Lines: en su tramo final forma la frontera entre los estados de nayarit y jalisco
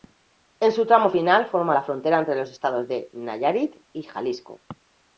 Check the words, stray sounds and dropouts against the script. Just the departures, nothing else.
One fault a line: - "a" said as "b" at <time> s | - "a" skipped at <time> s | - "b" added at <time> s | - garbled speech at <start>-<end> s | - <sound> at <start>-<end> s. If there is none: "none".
none